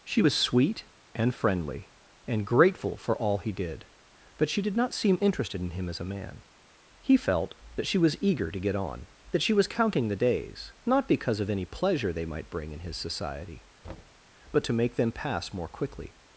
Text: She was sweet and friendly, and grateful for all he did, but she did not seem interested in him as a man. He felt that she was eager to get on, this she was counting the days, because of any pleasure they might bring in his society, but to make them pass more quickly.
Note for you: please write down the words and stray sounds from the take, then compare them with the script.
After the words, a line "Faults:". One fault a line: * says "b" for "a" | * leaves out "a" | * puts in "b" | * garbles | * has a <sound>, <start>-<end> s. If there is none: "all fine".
She was sweet and friendly, and grateful for all he did, but she did not seem interested in him as a man. He felt that she was eager to get on, that she was counting the days, not because of any pleasure they might bring in his society, but to make them pass more quickly.
Faults:
* says "that" for "this"
* puts in "not"
* has a thud, 13.8-14.2 s